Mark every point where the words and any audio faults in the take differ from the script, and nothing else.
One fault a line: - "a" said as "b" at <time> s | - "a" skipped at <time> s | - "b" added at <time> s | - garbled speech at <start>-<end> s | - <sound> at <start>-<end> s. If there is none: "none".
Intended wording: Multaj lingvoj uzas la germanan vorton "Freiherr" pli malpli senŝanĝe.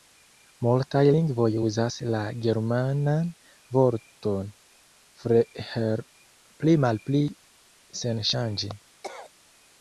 - cough at 9.0-9.3 s